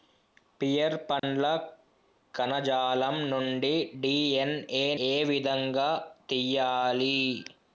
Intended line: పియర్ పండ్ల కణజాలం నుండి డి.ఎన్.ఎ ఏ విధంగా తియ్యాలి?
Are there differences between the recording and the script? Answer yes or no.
no